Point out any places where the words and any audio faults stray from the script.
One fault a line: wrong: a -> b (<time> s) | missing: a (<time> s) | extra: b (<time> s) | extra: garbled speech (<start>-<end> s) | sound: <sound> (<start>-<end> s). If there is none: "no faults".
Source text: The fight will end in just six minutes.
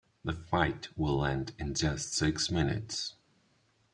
no faults